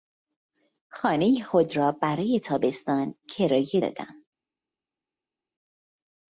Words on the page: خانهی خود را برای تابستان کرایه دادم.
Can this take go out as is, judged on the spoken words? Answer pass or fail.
pass